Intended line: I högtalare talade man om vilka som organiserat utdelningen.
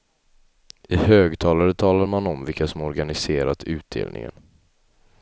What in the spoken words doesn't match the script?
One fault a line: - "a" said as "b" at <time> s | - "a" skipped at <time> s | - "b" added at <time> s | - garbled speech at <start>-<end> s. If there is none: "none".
none